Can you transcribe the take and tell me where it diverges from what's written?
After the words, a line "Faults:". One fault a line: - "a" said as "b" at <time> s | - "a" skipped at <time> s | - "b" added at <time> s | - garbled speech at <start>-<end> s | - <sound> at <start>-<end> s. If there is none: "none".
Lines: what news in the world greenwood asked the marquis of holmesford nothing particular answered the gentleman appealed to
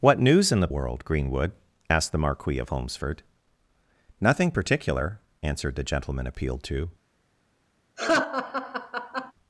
what news in the world greenwood asked the marquis of holmesford nothing particular answered the gentleman appealed to
Faults:
- laugh at 8.0-9.3 s